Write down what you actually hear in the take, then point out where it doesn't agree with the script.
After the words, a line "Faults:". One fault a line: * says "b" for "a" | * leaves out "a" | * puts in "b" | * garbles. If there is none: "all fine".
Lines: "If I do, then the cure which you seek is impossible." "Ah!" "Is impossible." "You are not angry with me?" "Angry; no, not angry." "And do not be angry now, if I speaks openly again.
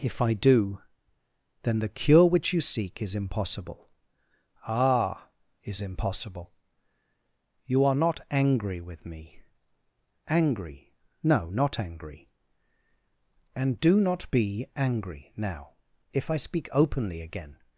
"If I do, then the cure which you seek is impossible." "Ah!" "Is impossible." "You are not angry with me?" "Angry; no, not angry." "And do not be angry now, if I speak openly again.
Faults:
* says "speak" for "speaks"